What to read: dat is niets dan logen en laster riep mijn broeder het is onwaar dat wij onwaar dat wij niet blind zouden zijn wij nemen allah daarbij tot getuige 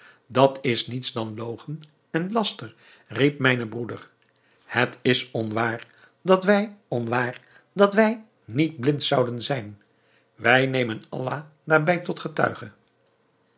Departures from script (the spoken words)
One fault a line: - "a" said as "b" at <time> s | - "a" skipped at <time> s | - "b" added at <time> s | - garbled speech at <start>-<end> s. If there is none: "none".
none